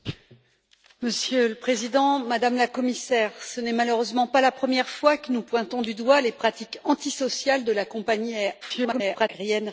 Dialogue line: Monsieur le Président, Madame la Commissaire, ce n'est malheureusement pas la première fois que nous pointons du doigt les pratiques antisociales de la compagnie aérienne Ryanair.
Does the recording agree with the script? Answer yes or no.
no